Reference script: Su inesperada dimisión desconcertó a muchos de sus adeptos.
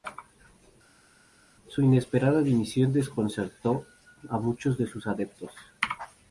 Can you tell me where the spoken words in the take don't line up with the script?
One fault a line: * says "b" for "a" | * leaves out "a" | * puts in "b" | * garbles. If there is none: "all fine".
all fine